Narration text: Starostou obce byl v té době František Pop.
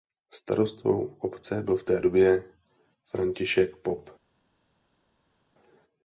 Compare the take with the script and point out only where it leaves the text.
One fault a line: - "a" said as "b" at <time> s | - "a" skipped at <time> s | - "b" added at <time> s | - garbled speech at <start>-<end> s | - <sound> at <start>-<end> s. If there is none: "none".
none